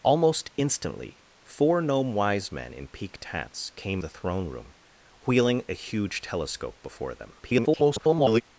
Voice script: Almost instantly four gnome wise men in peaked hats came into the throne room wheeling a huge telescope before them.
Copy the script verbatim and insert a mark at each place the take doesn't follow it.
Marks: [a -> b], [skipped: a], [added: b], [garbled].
Almost instantly four gnome wise men in peaked hats came [skipped: into] the throne room wheeling a huge telescope before them. [garbled]